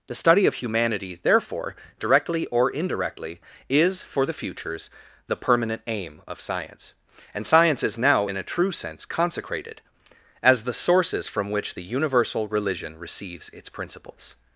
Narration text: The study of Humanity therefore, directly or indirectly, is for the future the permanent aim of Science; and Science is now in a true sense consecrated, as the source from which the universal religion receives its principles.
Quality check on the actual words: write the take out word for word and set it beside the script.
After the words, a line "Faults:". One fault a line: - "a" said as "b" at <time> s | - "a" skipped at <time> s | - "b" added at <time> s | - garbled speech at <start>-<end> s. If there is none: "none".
The study of Humanity therefore, directly or indirectly, is for the futures the permanent aim of Science; and Science is now in a true sense consecrated, as the sources from which the universal religion receives its principles.
Faults:
- "future" said as "futures" at 4.3 s
- "source" said as "sources" at 10.7 s